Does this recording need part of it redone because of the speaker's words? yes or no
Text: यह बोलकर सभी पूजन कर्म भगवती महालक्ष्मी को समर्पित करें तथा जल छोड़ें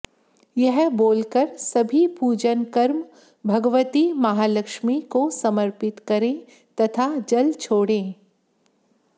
no